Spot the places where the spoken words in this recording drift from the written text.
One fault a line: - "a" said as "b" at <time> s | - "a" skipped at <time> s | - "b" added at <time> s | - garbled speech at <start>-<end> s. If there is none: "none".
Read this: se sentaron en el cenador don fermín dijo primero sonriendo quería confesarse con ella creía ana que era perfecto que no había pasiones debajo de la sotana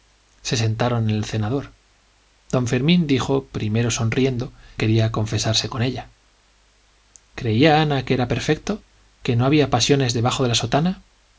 none